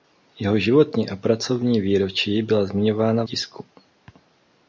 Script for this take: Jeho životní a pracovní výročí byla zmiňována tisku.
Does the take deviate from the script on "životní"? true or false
false